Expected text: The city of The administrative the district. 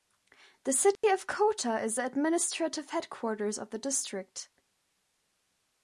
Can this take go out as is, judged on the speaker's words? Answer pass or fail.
fail